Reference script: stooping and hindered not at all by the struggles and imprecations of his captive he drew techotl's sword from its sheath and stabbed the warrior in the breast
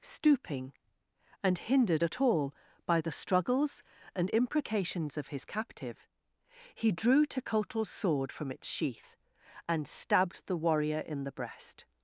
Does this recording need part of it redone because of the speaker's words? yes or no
yes